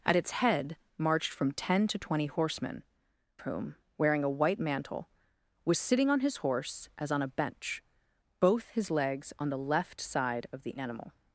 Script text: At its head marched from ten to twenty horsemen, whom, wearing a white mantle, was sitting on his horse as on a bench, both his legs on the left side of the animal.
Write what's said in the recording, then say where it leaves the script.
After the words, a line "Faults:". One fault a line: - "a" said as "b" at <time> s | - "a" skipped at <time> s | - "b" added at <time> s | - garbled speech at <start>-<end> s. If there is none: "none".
At its head marched from ten to twenty horsemen, whom, wearing a white mantle, was sitting on his horse as on a bench, both his legs on the left side of the animal.
Faults:
none